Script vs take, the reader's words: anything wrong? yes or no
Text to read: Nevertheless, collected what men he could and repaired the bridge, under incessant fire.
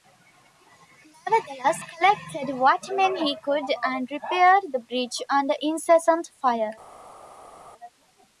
no